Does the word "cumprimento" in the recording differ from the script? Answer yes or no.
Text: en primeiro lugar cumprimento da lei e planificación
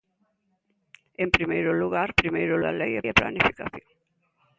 yes